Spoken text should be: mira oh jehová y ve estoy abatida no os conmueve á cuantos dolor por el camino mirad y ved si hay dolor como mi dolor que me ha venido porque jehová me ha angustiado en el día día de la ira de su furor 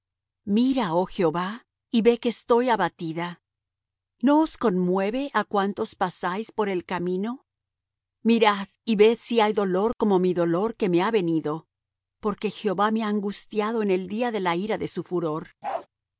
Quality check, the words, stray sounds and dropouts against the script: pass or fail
fail